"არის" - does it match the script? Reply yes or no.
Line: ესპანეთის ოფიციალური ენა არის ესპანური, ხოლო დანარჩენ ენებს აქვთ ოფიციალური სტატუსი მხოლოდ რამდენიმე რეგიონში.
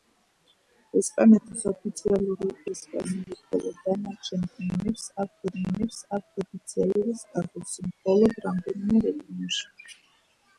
no